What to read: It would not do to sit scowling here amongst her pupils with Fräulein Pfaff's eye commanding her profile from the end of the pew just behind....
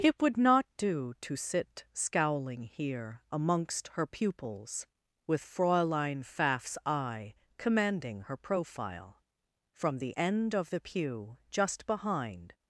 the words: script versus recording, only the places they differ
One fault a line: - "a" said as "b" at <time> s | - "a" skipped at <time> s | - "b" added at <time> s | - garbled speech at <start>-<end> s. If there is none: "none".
none